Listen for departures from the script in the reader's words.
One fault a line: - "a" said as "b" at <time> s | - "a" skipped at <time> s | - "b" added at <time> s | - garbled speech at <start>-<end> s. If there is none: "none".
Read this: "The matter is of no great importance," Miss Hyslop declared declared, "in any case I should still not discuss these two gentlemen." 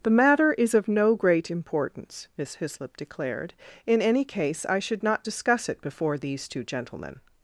- "declared" skipped at 3.5 s
- "still" skipped at 5.0 s
- "it before" added at 5.7 s